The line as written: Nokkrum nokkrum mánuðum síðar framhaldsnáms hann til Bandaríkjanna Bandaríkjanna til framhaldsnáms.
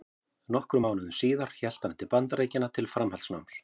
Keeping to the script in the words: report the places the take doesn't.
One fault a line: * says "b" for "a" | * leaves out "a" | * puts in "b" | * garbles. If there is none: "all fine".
* leaves out "nokkrum"
* says "hélt" for "framhaldsnáms"
* leaves out "Bandaríkjanna"